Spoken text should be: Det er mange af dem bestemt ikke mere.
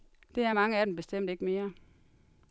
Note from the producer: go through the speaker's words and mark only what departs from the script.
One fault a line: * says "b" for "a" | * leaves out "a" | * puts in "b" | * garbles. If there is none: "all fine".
all fine